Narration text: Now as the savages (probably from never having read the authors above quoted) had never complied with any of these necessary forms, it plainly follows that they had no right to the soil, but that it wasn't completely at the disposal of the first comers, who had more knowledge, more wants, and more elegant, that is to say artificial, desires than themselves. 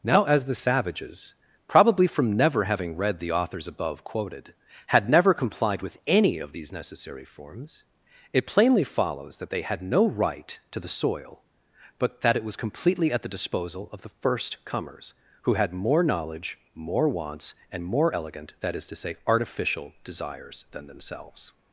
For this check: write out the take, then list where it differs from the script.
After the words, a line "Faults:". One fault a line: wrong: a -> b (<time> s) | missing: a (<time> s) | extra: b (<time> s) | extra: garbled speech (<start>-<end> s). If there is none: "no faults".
Now as the savages (probably from never having read the authors above quoted) had never complied with any of these necessary forms, it plainly follows that they had no right to the soil, but that it was completely at the disposal of the first comers, who had more knowledge, more wants, and more elegant, that is to say artificial, desires than themselves.
Faults:
wrong: wasn't -> was (12.4 s)